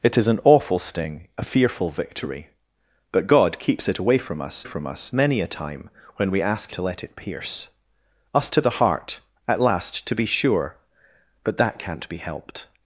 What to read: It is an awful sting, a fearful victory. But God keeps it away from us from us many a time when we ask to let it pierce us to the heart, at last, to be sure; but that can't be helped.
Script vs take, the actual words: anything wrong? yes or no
no